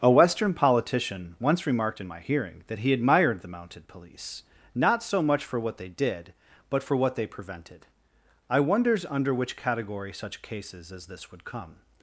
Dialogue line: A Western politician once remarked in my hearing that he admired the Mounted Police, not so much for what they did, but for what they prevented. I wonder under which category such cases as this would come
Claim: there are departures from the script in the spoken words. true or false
true